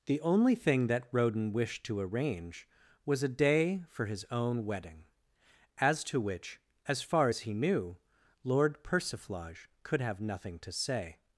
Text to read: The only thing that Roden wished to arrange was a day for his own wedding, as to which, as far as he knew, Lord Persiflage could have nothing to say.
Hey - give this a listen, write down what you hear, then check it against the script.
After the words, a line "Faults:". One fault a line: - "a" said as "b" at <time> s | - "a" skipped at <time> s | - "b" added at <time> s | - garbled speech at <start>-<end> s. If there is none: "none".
The only thing that Roden wished to arrange was a day for his own wedding, as to which, as far as he knew, Lord Persiflage could have nothing to say.
Faults:
none